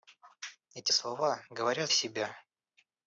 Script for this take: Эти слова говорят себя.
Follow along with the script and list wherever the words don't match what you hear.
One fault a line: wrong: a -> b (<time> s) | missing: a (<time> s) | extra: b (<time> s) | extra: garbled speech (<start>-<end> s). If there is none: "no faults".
no faults